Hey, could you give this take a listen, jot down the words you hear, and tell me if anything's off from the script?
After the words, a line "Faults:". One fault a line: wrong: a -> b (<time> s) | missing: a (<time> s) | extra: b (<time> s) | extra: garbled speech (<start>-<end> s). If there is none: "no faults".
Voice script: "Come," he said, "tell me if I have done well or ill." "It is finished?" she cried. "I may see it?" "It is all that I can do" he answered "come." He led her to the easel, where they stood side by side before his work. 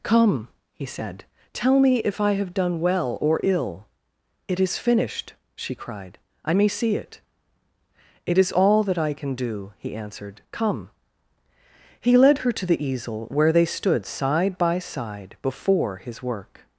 "Come," he said, "tell me if I have done well or ill." "It is finished?" she cried. "I may see it?" "It is all that I can do" he answered "come." He led her to the easel, where they stood side by side before his work.
Faults:
no faults